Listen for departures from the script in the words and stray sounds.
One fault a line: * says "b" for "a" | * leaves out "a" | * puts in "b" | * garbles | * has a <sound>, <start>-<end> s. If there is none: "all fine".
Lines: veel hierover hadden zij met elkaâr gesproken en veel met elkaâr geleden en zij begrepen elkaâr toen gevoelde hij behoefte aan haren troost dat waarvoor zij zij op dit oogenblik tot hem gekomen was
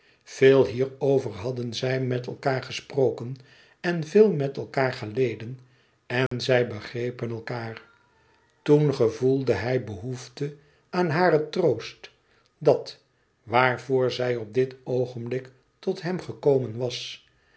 * has a dropout, 6.3-6.3 s
* leaves out "zij"